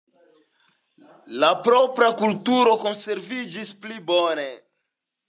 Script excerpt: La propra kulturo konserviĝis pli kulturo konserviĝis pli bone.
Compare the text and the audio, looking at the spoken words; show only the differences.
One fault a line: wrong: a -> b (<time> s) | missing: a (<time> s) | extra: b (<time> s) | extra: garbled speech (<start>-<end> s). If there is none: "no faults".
missing: kulturo konserviĝis pli (4.0 s)